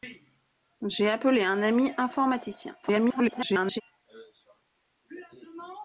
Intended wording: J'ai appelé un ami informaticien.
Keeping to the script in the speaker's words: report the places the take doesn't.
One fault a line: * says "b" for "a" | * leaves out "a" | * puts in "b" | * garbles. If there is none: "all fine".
* garbles